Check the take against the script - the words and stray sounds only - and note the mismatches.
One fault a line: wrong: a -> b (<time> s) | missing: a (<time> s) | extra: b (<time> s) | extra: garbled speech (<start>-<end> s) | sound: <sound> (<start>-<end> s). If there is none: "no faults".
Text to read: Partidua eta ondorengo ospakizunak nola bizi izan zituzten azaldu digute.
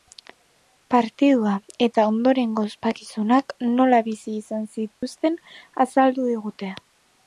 sound: dropout (4.9-5.0 s)